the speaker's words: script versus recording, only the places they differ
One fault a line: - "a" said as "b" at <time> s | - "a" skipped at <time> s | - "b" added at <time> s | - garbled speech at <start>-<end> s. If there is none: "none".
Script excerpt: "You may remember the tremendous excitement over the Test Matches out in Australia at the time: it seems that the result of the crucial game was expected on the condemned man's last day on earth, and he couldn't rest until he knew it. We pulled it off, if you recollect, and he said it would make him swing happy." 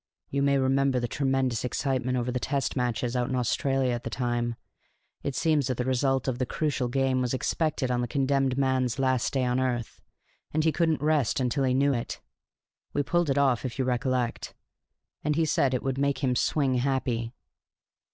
none